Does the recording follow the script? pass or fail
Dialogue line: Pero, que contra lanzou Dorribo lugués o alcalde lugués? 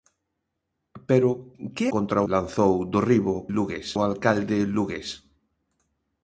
pass